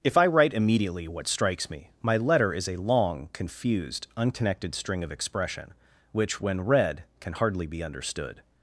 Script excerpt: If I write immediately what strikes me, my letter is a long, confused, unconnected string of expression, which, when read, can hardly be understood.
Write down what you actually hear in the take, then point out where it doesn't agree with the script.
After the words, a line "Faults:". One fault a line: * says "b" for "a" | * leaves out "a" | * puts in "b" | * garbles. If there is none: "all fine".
If I write immediately what strikes me, my letter is a long, confused, unconnected string of expression, which, when read, can hardly be understood.
Faults:
all fine